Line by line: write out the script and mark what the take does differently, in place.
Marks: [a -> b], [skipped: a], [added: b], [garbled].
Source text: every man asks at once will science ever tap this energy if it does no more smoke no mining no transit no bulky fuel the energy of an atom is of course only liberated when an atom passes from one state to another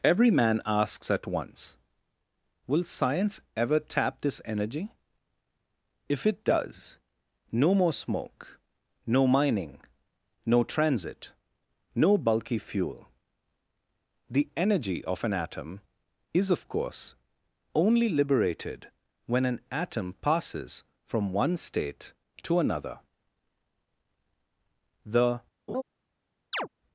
every man asks at once will science ever tap this energy if it does no more smoke no mining no transit no bulky fuel the energy of an atom is of course only liberated when an atom passes from one state to another [added: the]